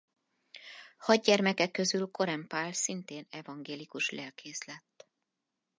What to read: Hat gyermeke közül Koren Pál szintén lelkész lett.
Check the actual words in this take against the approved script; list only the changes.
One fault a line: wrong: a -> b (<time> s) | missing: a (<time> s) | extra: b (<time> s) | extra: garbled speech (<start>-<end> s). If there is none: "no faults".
extra: evangélikus (3.3 s)